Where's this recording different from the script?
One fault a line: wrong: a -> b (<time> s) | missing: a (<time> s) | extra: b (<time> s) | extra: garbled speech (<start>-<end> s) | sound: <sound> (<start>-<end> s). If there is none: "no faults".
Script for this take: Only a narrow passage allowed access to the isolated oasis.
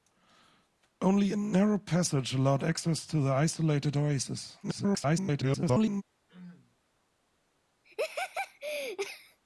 extra: garbled speech (4.6-6.0 s)
sound: throat clearing (6.3-6.8 s)
sound: laugh (7.8-9.4 s)